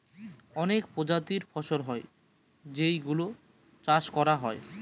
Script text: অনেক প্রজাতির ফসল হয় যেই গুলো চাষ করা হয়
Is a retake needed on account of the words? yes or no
no